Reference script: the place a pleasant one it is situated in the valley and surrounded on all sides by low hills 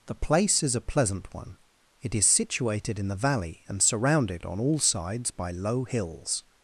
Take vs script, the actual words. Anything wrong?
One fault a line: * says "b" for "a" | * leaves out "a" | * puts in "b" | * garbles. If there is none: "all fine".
* puts in "is"